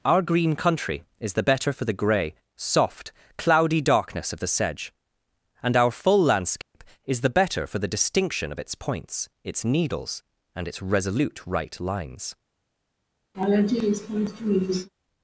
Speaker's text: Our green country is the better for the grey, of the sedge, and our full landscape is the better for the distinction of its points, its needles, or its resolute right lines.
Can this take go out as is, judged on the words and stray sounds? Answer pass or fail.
fail